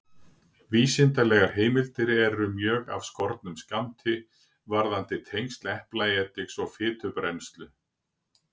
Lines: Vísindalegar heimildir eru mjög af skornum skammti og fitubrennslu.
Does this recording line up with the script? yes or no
no